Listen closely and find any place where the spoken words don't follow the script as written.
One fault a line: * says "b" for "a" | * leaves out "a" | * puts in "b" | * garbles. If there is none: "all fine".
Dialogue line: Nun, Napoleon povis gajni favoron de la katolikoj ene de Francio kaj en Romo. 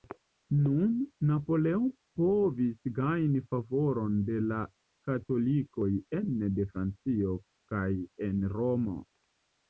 all fine